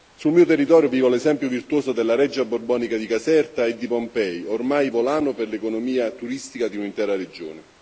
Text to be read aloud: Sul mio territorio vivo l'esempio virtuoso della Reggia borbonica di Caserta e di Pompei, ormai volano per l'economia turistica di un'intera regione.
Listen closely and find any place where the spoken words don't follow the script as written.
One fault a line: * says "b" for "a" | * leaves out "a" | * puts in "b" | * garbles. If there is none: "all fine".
all fine